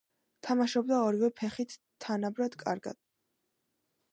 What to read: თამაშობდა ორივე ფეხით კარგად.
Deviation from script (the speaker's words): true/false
true